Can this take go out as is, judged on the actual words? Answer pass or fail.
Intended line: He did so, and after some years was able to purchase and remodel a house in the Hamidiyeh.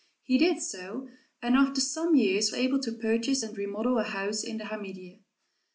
fail